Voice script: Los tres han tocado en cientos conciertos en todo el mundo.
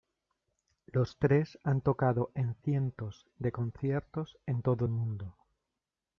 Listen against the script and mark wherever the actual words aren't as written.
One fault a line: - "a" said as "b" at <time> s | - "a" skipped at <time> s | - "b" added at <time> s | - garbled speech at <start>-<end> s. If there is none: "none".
- "de" added at 3.4 s